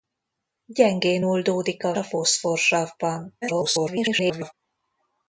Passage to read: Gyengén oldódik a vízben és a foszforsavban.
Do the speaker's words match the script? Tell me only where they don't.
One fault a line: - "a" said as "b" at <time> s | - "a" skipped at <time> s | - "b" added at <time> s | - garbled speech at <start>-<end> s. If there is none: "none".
- "vízben és" skipped at 1.9 s
- garbled speech at 3.4-4.5 s